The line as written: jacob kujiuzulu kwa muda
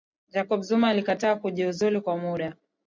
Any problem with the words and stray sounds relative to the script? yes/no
yes